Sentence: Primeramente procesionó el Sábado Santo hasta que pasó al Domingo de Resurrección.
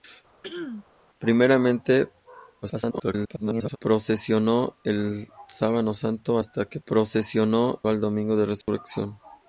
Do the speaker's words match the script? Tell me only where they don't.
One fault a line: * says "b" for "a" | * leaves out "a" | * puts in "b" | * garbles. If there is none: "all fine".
* garbles
* says "procesionó" for "pasó"